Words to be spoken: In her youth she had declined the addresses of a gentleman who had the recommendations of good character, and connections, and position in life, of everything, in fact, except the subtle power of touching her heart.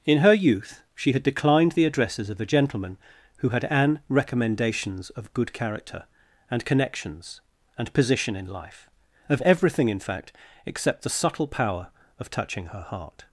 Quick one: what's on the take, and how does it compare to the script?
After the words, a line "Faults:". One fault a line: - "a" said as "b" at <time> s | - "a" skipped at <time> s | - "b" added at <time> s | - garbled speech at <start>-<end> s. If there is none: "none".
In her youth she had declined the addresses of a gentleman who had an recommendations of good character, and connections, and position in life, of everything, in fact, except the subtle power of touching her heart.
Faults:
- "the" said as "an" at 3.6 s